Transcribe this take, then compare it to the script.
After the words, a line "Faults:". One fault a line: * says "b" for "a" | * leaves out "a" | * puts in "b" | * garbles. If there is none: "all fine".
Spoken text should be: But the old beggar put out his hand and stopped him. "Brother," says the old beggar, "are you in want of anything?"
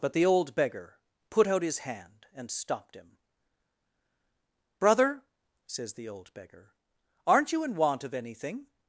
But the old beggar put out his hand and stopped him. "Brother," says the old beggar, "aren't you in want of anything?"
Faults:
* says "aren't" for "are"